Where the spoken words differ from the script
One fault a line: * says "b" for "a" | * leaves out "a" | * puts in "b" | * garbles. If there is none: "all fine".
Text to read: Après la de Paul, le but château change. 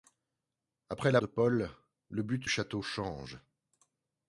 all fine